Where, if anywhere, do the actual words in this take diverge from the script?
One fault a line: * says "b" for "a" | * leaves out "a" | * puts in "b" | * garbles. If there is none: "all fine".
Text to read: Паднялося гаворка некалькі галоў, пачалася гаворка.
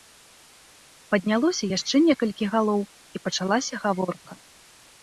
* says "яшчэ" for "гаворка"
* puts in "і"